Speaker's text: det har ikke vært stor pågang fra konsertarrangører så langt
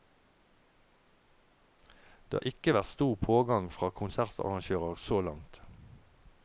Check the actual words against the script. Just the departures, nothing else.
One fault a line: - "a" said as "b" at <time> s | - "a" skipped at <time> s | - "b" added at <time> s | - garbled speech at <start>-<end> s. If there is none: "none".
none